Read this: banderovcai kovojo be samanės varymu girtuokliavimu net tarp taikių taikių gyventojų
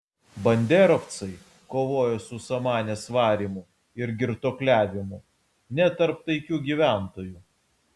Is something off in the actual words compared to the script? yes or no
yes